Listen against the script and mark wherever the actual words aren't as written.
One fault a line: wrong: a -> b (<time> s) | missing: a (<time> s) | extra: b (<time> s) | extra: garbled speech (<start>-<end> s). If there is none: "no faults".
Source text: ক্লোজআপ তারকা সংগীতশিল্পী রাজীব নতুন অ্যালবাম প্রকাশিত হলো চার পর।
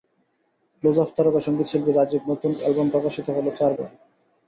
no faults